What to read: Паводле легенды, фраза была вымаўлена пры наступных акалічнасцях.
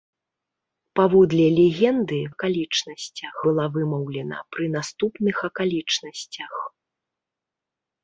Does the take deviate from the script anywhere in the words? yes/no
yes